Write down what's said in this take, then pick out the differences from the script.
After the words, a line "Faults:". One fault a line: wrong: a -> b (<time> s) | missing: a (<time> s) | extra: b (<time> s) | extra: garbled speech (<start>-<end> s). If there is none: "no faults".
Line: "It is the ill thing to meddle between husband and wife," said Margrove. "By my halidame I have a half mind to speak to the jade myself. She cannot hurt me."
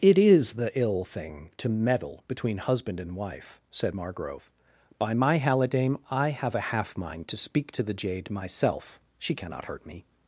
"It is the ill thing to meddle between husband and wife," said Margrove. "By my halidame I have a half mind to speak to the jade myself. She cannot hurt me."
Faults:
no faults